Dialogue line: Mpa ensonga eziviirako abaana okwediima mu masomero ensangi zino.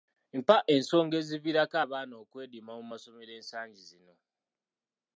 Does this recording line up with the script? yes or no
yes